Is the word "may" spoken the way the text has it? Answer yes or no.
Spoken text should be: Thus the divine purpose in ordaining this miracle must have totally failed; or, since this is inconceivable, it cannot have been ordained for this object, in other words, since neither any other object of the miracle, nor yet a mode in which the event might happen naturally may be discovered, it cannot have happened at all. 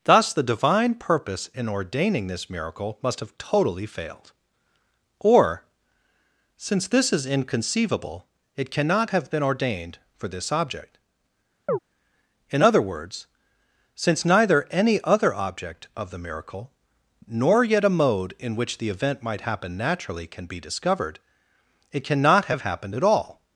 no